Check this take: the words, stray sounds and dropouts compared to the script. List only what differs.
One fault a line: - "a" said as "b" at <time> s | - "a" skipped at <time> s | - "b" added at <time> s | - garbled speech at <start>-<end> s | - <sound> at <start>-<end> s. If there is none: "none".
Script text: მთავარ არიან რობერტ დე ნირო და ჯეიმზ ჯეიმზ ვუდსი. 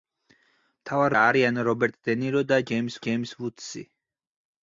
none